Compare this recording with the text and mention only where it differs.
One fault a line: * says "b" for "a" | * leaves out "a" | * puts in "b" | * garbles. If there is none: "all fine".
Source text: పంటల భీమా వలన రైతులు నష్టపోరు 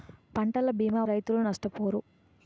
* leaves out "వలన"